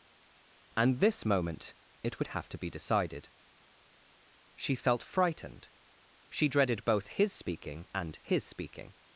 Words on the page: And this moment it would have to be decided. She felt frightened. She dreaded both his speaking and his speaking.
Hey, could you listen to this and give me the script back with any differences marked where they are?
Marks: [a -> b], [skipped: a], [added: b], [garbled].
And this moment it would have to be decided. She felt frightened. She dreaded both his speaking and his speaking.